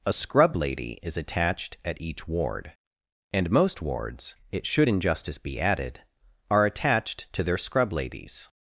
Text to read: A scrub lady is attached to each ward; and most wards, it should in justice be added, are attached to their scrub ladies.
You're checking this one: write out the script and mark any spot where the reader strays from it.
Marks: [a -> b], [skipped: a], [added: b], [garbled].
A scrub lady is attached [to -> at] each ward; and most wards, it should in justice be added, are attached to their scrub ladies.